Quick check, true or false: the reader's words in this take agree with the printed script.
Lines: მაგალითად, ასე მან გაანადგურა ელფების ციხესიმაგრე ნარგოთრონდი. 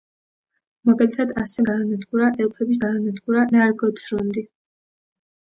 false